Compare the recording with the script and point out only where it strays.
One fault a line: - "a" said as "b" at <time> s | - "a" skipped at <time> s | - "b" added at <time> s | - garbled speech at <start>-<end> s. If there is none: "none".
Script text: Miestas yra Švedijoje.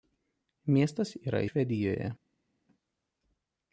none